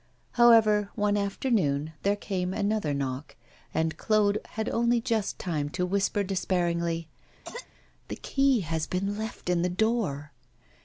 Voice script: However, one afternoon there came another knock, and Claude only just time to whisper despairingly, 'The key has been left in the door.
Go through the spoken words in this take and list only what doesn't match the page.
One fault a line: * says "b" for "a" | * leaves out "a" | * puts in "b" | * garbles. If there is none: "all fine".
* puts in "had"